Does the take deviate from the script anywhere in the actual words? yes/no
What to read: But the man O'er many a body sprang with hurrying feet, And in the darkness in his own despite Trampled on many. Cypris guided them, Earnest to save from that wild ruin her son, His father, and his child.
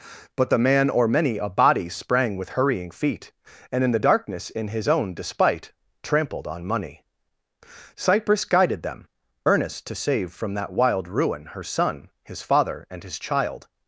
yes